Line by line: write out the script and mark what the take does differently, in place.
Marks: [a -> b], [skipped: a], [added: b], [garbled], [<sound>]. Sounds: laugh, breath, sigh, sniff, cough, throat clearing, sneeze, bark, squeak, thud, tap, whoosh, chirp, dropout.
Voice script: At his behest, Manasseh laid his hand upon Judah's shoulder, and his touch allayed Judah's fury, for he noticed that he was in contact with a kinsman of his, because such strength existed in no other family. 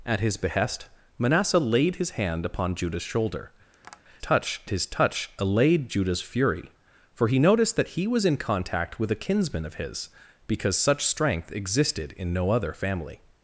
At his behest, Manasseh laid his hand upon Judah's shoulder, [tap] [and -> touch] his touch allayed Judah's fury, for he noticed that he was in contact with a kinsman of his, because such strength existed in no other family.